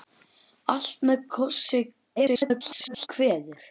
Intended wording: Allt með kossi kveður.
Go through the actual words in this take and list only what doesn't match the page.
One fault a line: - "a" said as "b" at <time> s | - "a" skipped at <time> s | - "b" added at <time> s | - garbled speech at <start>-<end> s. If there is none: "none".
- garbled speech at 2.2-3.1 s